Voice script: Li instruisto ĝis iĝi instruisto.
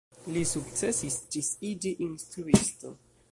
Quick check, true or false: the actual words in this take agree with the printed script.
false